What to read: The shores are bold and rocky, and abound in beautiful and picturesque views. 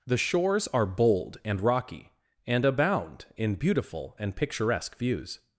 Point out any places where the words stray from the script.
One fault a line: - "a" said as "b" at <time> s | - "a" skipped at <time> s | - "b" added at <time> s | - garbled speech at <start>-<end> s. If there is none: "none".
none